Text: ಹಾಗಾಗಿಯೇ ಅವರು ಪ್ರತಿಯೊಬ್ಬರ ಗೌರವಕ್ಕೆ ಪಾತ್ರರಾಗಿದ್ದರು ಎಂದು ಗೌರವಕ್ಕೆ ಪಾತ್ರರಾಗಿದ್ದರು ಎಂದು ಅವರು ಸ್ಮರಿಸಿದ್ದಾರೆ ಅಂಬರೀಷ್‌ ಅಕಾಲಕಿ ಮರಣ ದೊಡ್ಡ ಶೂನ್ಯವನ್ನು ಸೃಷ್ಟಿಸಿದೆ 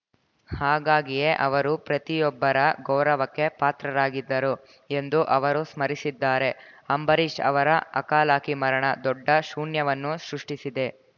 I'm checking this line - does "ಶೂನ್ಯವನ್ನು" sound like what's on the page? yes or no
yes